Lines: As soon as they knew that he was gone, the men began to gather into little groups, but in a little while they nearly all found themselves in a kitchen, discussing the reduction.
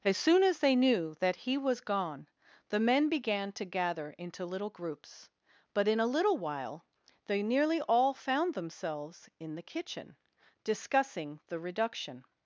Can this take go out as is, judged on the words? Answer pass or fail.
fail